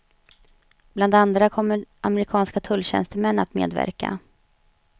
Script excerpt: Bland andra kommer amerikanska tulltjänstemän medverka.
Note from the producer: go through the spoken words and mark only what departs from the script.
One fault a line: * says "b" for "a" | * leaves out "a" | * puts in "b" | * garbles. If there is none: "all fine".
* puts in "att"